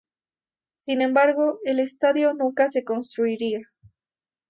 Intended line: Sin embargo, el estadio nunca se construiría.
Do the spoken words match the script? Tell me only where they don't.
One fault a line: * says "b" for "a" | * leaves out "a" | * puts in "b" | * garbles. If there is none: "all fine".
all fine